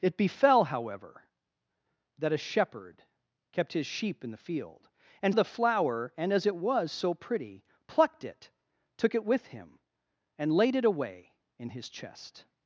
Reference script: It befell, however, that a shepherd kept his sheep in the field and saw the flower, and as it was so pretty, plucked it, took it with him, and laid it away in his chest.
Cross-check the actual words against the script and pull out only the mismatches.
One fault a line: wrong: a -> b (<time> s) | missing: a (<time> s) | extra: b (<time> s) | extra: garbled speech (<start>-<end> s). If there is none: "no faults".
missing: saw (5.3 s)